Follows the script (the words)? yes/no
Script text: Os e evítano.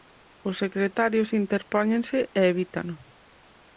no